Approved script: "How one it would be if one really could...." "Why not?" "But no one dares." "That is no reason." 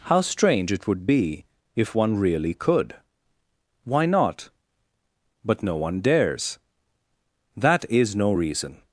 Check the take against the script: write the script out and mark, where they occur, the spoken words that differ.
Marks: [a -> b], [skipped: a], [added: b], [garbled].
"How [one -> strange] it would be if one really could...." "Why not?" "But no one dares." "That is no reason."